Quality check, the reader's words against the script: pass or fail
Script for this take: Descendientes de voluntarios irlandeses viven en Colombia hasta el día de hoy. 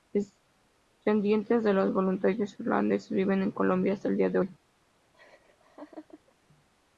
fail